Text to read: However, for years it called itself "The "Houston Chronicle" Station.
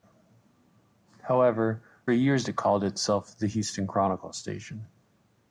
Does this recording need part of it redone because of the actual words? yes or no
yes